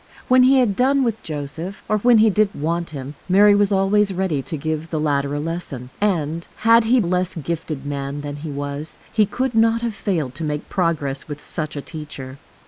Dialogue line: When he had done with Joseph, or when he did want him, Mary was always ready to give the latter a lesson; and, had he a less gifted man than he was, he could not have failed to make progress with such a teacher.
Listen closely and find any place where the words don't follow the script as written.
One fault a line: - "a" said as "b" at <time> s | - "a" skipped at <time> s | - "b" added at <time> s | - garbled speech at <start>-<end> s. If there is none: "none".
none